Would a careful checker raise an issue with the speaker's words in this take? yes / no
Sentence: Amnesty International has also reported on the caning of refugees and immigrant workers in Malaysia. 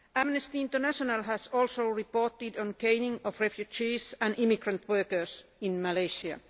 no